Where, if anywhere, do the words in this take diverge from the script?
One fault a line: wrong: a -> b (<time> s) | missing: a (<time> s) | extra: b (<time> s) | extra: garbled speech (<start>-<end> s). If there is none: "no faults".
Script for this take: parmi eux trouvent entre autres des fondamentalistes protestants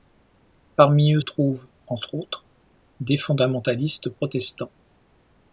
no faults